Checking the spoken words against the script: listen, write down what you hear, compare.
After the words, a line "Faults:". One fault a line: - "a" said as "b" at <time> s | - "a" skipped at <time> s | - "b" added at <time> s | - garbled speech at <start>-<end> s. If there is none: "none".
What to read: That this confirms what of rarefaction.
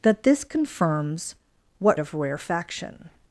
That this confirms what of rarefaction.
Faults:
none